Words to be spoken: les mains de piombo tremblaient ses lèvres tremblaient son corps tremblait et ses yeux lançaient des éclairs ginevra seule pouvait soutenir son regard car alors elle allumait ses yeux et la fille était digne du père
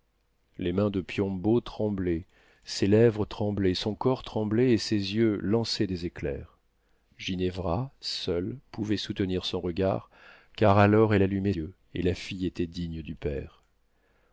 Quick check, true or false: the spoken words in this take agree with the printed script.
false